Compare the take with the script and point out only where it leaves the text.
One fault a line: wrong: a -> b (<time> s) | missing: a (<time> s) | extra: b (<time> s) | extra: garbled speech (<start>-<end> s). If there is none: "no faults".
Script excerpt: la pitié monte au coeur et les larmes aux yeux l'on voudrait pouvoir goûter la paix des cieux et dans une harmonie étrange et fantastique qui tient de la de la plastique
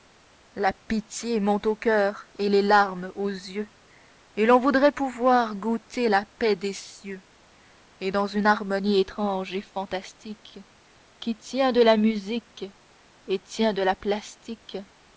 extra: et (4.3 s)
extra: musique et tient (12.0 s)